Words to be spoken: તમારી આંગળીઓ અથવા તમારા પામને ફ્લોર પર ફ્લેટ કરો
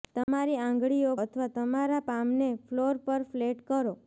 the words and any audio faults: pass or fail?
fail